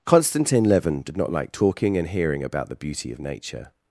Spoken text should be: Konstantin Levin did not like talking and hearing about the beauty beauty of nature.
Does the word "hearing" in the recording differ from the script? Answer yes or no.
no